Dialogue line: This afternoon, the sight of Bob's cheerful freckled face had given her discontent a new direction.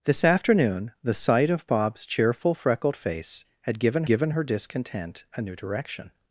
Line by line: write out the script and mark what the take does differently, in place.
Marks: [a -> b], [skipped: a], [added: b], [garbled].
This afternoon, the sight of Bob's cheerful freckled face had given [added: given] her discontent a new direction.